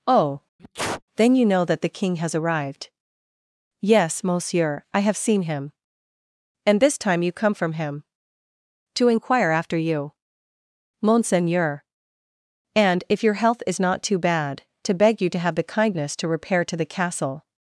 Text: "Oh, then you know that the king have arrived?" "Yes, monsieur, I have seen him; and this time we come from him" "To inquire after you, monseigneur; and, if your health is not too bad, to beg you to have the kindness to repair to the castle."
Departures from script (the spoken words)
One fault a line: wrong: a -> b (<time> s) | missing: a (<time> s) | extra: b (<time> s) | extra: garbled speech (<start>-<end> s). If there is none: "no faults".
wrong: have -> has (2.2 s)
wrong: we -> you (7.2 s)